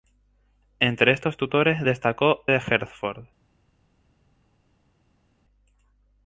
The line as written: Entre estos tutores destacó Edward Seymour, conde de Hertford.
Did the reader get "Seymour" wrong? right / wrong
wrong